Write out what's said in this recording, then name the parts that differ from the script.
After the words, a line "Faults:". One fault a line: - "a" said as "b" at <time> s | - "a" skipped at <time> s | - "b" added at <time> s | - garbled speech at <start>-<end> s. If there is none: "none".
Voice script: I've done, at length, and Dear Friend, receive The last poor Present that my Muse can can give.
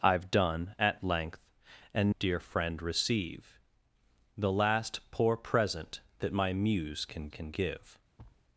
I've done, at length, and Dear Friend, receive The last poor Present that my Muse can can give.
Faults:
none